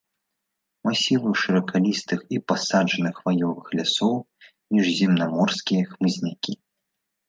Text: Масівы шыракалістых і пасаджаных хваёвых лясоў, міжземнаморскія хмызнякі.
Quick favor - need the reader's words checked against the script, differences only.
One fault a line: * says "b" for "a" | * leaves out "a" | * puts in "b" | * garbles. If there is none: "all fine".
all fine